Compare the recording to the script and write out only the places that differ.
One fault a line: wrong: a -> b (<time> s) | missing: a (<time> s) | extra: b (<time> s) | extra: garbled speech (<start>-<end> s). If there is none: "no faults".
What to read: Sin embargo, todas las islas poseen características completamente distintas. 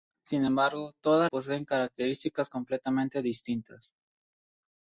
missing: las islas (1.3 s)